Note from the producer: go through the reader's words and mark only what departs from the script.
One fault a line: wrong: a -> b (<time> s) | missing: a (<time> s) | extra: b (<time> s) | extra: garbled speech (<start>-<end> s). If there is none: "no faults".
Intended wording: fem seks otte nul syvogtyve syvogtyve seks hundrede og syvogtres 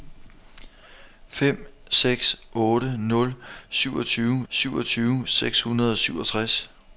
no faults